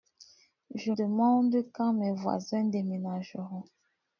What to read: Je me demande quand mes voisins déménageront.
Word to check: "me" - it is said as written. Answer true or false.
false